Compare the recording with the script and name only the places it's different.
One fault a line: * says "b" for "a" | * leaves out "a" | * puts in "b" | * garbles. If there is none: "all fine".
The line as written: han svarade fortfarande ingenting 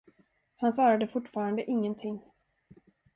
all fine